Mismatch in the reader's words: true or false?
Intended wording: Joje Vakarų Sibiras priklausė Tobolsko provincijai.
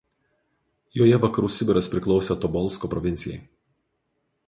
false